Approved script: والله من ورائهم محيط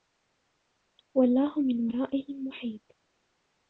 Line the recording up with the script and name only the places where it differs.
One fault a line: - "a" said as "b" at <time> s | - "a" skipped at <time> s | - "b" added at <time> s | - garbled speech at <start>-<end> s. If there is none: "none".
none